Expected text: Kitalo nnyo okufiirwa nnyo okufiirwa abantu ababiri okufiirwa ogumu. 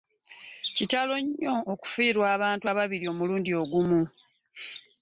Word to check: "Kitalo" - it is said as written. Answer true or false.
true